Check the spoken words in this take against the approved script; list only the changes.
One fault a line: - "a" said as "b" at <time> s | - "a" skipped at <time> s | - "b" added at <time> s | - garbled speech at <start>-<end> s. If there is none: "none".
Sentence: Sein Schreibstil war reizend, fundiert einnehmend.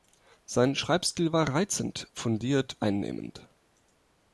none